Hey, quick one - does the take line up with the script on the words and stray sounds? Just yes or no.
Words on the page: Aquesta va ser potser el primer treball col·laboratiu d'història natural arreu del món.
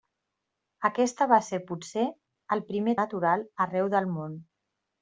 no